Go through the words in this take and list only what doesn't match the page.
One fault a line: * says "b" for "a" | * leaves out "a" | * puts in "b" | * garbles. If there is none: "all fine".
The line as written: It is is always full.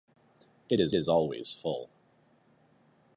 all fine